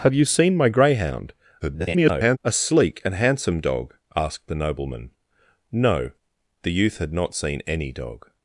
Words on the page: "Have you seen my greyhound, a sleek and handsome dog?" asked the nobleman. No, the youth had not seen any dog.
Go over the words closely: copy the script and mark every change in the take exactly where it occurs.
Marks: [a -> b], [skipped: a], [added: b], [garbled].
"Have you seen my greyhound, [garbled] a sleek and handsome dog?" asked the nobleman. No, the youth had not seen any dog.